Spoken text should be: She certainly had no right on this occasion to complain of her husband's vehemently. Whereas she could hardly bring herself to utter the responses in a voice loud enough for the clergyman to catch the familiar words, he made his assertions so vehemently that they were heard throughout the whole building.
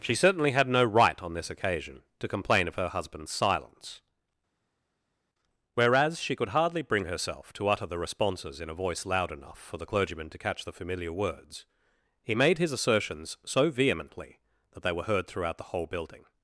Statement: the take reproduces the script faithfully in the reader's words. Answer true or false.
false